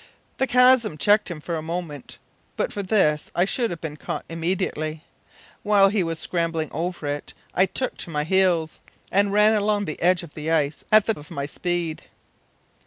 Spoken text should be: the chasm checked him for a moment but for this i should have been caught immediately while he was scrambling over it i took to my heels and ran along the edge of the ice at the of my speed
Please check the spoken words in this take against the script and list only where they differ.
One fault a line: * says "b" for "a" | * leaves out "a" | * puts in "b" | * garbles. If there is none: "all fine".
all fine